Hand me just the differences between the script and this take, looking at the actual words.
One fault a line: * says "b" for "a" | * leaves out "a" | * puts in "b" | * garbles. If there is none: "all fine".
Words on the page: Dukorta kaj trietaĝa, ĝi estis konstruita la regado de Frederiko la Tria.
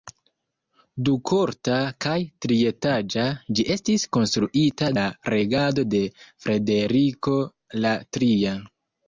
all fine